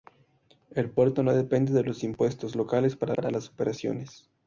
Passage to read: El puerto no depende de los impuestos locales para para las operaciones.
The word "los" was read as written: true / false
true